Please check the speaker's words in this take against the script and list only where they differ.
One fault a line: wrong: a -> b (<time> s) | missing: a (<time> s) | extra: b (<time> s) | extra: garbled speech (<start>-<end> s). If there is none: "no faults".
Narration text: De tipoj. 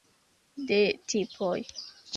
no faults